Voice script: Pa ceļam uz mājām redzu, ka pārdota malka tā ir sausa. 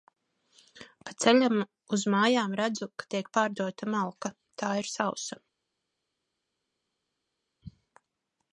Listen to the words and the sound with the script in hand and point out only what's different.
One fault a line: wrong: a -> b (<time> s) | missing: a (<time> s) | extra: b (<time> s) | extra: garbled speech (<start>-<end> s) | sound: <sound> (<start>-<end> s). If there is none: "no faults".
extra: tiek (3.1 s)